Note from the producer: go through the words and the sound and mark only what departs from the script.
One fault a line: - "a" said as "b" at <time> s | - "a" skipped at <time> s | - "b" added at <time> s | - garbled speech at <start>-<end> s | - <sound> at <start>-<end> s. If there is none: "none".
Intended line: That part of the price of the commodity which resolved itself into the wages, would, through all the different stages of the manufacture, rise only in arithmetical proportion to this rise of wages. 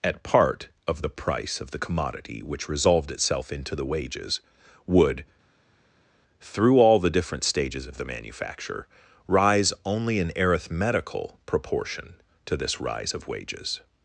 - "That" said as "At" at 0.0 s